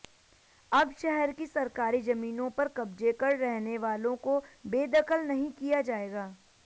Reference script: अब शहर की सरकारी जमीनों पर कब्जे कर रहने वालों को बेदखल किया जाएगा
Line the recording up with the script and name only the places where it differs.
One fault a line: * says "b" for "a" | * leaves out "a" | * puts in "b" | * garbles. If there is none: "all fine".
* puts in "नहीं"